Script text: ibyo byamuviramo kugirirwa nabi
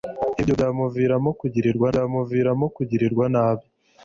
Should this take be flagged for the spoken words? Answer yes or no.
yes